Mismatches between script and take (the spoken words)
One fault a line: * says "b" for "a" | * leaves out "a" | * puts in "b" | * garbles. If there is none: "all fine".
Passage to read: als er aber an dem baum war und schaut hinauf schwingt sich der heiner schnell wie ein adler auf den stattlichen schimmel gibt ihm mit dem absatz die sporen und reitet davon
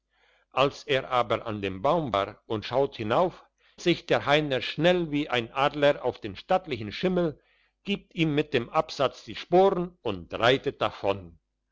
* leaves out "schwingt"